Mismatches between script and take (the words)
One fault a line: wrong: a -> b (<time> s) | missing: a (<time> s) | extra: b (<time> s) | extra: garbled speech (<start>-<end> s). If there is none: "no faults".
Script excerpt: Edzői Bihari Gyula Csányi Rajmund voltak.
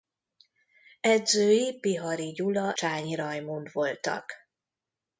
no faults